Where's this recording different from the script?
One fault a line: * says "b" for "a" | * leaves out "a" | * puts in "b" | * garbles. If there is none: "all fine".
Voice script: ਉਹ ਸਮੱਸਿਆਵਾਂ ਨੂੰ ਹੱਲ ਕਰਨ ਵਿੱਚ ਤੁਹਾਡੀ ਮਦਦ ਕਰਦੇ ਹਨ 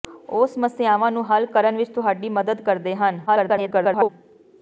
* garbles